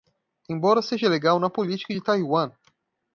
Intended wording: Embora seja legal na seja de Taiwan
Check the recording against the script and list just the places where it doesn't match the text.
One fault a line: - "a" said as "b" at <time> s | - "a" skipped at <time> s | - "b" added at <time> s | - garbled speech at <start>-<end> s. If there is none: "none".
- "seja" said as "política" at 1.5 s